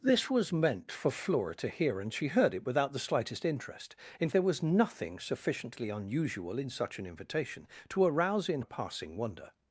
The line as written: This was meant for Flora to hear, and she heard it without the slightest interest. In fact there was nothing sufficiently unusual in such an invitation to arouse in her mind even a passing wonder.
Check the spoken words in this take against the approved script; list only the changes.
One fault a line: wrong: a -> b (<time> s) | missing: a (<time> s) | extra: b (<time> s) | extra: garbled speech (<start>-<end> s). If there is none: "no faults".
missing: fact (4.3 s)
missing: her mind even (8.6 s)